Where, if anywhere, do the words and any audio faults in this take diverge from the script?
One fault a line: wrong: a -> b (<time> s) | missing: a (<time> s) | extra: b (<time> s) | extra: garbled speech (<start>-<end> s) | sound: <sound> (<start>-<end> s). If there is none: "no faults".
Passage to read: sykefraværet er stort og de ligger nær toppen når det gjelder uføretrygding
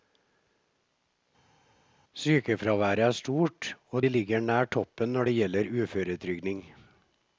no faults